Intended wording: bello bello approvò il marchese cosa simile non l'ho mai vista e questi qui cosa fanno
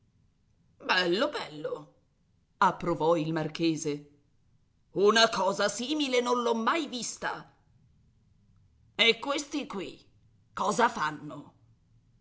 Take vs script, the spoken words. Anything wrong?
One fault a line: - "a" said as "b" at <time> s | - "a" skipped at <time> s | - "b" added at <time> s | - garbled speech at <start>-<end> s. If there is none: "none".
- "una" added at 4.9 s